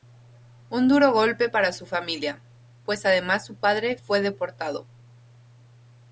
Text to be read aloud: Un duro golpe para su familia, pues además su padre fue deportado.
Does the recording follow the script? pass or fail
pass